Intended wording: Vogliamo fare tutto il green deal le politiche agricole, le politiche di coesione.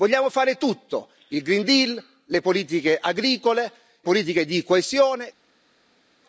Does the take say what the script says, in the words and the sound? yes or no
no